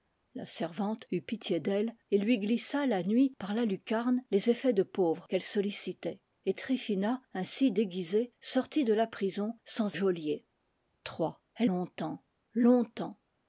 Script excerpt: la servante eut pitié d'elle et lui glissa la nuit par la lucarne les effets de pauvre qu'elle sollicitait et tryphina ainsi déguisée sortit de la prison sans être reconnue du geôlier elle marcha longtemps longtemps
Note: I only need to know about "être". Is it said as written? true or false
false